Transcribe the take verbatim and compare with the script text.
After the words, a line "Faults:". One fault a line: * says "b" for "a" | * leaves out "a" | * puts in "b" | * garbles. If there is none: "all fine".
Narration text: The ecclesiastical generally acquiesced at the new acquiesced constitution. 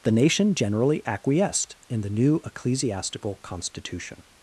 The nation generally acquiesced in the new ecclesiastical constitution.
Faults:
* says "nation" for "ecclesiastical"
* says "in" for "at"
* says "ecclesiastical" for "acquiesced"